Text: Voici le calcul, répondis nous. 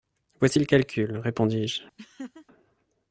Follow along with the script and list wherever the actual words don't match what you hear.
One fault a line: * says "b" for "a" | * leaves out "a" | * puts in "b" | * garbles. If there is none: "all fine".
* says "je" for "nous"